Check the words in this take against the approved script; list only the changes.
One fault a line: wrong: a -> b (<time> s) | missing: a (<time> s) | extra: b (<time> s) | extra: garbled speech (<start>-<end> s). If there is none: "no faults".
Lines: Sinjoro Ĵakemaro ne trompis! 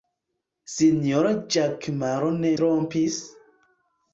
no faults